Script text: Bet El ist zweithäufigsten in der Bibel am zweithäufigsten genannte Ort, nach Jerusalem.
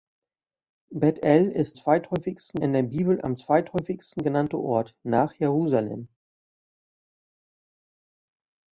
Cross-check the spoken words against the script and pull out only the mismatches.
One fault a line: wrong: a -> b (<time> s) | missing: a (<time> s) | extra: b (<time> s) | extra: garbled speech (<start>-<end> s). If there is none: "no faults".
no faults